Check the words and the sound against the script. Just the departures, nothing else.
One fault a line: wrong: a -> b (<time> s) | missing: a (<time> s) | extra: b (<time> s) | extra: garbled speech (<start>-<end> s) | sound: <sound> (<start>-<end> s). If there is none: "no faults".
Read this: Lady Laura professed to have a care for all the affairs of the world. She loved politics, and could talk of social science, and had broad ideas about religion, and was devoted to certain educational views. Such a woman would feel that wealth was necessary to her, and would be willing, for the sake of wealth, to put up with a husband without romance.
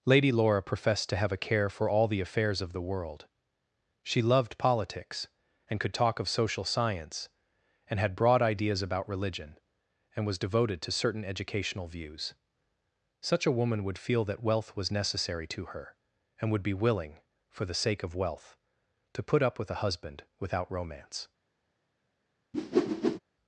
sound: whoosh (22.5-23.2 s)